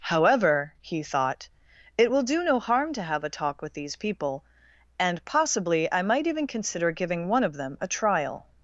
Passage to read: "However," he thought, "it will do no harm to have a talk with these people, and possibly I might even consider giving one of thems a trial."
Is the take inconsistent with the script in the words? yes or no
yes